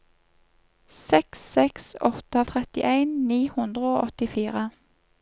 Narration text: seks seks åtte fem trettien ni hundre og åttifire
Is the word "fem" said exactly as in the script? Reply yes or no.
no